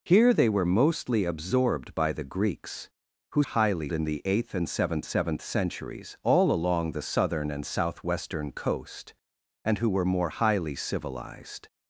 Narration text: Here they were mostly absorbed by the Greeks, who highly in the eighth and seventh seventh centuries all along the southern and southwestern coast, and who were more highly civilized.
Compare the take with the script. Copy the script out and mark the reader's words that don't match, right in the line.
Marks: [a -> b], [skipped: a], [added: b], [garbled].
Here they were mostly absorbed by the Greeks, who highly in the eighth and seventh seventh centuries all along the southern and southwestern coast, and who were more highly civilized.